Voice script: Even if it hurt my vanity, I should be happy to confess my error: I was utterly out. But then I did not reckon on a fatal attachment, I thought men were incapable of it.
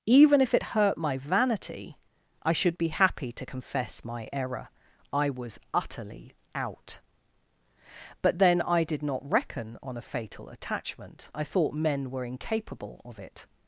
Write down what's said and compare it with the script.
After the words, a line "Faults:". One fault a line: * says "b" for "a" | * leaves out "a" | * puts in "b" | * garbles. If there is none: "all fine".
Even if it hurt my vanity, I should be happy to confess my error: I was utterly out. But then I did not reckon on a fatal attachment, I thought men were incapable of it.
Faults:
all fine